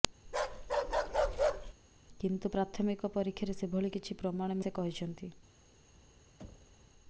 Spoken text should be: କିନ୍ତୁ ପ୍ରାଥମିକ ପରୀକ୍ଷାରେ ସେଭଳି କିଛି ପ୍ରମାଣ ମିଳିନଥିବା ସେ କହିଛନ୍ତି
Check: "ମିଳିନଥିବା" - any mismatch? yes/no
yes